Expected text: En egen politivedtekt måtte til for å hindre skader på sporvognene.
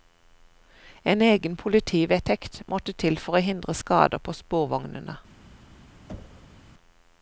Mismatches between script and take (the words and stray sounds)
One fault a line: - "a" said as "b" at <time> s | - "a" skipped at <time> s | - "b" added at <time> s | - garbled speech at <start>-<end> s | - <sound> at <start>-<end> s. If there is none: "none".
- thud at 6.1-6.6 s